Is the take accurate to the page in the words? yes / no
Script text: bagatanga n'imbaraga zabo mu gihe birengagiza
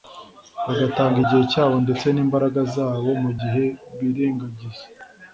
no